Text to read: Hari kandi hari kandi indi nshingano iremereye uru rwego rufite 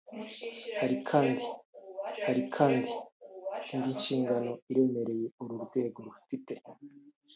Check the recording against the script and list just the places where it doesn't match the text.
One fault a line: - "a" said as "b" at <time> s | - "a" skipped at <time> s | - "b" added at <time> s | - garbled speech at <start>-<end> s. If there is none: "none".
none